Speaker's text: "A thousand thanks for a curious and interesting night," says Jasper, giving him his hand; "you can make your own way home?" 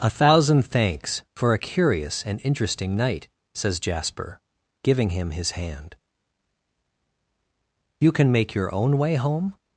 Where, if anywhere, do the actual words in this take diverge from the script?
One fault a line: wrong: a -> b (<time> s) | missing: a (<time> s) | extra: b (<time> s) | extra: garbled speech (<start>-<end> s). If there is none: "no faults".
no faults